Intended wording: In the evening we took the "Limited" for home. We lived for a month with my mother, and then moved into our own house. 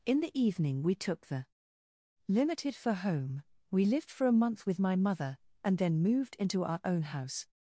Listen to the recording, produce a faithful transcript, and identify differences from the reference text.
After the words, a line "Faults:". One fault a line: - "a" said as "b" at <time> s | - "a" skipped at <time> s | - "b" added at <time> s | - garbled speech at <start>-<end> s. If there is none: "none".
In the evening we took the "Limited" for home. We lived for a month with my mother, and then moved into our own house.
Faults:
none